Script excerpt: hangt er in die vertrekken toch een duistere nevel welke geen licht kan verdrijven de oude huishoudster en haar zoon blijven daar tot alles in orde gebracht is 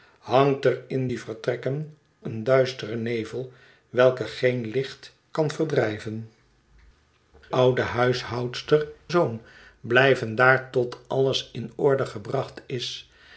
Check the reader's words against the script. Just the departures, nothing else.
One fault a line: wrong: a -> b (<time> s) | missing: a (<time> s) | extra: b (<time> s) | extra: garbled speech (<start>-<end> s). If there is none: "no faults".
missing: toch (2.0 s)
missing: de (6.3 s)
missing: en haar (8.9 s)